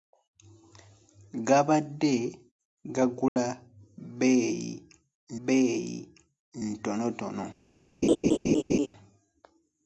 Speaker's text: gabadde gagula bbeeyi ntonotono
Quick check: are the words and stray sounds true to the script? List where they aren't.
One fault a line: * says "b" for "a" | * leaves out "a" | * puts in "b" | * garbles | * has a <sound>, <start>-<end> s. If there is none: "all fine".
* has a dropout, 3.3-3.4 s
* puts in "bbeeyi"
* has a laugh, 8.0-8.9 s